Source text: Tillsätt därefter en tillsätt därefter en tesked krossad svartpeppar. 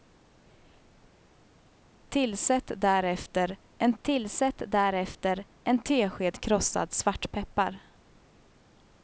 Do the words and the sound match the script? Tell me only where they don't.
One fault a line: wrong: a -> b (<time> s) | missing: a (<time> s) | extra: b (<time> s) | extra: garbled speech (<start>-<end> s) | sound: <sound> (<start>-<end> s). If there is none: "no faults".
no faults